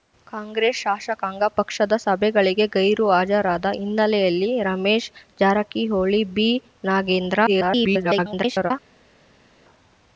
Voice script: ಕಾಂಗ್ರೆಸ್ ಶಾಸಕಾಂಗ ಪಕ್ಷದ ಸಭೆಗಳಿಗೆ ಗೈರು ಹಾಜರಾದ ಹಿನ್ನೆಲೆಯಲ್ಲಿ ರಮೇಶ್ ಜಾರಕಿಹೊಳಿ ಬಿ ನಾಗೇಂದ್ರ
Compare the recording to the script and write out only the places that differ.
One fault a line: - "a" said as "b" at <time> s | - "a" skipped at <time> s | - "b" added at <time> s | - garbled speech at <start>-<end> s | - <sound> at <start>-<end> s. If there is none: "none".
- garbled speech at 7.5-8.7 s